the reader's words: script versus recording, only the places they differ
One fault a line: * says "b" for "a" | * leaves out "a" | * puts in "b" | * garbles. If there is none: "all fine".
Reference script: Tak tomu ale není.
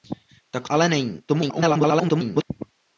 * leaves out "tomu"
* garbles